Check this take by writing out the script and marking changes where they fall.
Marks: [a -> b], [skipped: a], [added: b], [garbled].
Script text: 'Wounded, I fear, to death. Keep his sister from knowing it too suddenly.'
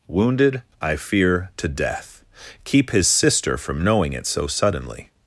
'Wounded, I fear, to death. Keep his sister from knowing it [too -> so] suddenly.'